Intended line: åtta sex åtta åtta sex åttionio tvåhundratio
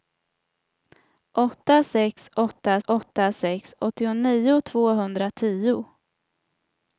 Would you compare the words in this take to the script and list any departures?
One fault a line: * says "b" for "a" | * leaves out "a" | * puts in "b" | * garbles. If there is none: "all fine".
all fine